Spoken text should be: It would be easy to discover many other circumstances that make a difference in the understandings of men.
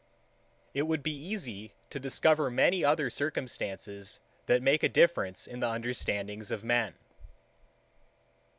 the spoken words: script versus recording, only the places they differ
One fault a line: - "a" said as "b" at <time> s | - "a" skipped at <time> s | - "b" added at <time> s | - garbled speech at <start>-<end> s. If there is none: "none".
none